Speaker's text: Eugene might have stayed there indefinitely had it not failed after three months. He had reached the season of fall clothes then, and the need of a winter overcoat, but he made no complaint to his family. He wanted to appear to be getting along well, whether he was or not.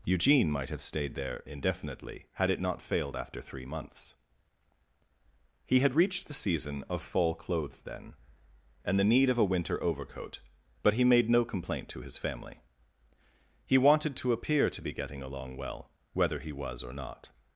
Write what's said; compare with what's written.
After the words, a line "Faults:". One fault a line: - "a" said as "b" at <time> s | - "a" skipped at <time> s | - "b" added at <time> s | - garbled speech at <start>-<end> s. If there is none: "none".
Eugene might have stayed there indefinitely had it not failed after three months. He had reached the season of fall clothes then, and the need of a winter overcoat, but he made no complaint to his family. He wanted to appear to be getting along well, whether he was or not.
Faults:
none